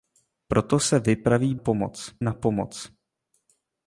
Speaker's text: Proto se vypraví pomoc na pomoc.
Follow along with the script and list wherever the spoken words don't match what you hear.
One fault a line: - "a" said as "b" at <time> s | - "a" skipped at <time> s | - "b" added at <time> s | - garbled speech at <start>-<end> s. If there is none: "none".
none